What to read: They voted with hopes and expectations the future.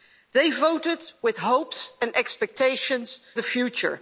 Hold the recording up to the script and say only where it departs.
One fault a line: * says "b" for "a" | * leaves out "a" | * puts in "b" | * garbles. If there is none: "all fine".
all fine